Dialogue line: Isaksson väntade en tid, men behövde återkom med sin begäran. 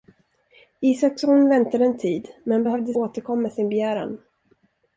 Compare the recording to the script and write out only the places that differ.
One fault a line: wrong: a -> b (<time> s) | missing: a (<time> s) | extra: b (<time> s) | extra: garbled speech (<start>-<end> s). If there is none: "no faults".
no faults